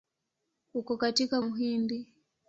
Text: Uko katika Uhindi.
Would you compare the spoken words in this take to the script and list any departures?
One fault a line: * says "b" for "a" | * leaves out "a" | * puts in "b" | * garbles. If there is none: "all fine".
all fine